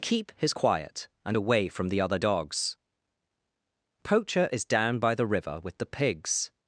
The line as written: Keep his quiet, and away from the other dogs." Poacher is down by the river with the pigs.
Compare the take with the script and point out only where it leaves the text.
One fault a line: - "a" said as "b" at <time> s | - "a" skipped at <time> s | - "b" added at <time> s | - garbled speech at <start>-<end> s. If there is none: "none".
none